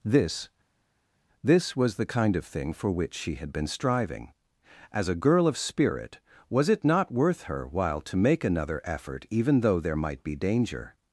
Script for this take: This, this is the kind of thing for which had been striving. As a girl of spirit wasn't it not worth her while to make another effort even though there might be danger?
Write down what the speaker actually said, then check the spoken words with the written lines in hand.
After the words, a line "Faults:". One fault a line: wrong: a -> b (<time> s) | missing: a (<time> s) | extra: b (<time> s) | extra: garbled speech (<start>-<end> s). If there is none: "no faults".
This, this was the kind of thing for which she had been striving. As a girl of spirit was it not worth her while to make another effort even though there might be danger?
Faults:
wrong: is -> was (1.7 s)
extra: she (3.1 s)
wrong: wasn't -> was (6.5 s)